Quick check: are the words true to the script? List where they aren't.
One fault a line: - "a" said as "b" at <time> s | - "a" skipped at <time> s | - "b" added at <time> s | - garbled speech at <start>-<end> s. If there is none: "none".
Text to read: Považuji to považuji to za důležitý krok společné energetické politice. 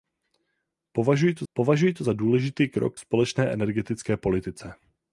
none